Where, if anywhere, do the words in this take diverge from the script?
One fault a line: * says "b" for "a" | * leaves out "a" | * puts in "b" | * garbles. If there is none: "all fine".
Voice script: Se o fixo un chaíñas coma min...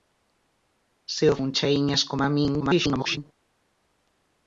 * leaves out "fixo"
* garbles